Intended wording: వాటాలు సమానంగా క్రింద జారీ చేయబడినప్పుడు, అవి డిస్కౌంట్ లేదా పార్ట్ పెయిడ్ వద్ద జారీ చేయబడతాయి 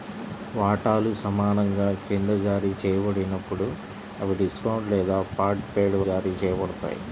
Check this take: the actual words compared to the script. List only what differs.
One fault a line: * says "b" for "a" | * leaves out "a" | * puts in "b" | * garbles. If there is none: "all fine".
* leaves out "వద్ద"